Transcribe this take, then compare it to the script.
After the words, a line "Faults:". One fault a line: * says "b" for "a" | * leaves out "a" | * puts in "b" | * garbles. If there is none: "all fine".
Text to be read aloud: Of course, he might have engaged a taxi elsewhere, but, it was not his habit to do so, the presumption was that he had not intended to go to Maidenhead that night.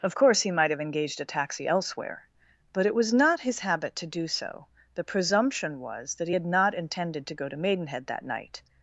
Of course, he might have engaged a taxi elsewhere, but, it was not his habit to do so, the presumption was that he had not intended to go to Maidenhead that night.
Faults:
all fine